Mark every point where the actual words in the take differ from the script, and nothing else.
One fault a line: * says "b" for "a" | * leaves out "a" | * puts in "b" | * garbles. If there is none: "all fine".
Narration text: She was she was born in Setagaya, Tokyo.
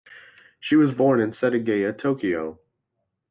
* leaves out "she was"